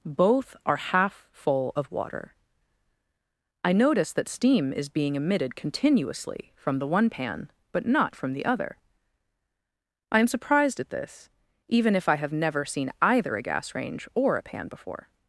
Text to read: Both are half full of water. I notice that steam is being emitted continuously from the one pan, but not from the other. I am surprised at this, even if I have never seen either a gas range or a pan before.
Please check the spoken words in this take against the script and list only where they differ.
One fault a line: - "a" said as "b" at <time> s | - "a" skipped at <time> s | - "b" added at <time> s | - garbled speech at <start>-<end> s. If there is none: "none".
none